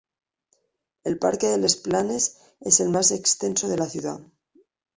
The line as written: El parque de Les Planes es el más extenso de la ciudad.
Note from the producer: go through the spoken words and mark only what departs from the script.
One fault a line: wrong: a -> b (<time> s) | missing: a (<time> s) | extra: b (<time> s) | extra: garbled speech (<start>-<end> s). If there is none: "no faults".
no faults